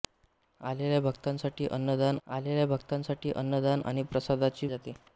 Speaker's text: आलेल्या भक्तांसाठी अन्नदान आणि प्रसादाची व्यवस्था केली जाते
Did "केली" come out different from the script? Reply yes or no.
yes